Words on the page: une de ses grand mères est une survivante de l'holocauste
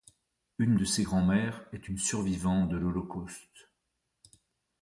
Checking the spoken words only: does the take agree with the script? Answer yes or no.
yes